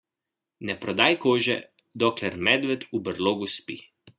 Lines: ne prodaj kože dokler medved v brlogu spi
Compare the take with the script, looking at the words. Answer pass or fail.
pass